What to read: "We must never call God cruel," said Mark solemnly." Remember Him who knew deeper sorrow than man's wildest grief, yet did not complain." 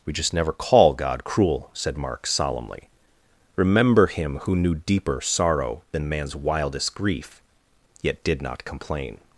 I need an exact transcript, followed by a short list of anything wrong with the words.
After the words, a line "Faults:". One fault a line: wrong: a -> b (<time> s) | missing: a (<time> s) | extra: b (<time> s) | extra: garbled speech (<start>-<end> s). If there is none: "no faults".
"We just never call God cruel," said Mark solemnly." Remember Him who knew deeper sorrow than man's wildest grief, yet did not complain."
Faults:
wrong: must -> just (0.1 s)